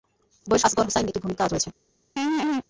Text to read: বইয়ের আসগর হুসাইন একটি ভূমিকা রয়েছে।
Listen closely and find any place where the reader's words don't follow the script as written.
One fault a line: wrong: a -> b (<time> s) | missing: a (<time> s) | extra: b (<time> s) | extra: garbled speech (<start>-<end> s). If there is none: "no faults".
no faults